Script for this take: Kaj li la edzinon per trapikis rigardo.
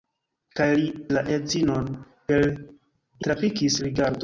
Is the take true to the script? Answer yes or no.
yes